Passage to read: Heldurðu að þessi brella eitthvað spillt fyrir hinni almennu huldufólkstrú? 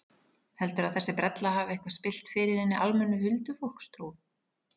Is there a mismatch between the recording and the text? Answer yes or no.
yes